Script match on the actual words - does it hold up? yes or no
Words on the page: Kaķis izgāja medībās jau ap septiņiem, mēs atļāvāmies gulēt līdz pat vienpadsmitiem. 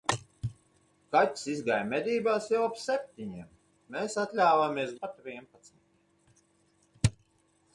no